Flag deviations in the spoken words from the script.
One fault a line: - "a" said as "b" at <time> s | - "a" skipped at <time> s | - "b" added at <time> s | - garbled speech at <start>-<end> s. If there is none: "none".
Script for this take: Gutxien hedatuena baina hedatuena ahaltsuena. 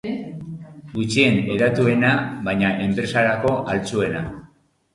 - "hedatuena" said as "enpresarako" at 2.9 s